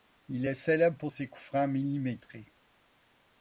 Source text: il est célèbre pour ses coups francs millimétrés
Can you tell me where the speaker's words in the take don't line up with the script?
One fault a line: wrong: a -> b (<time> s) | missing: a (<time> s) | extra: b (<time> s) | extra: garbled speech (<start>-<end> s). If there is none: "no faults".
no faults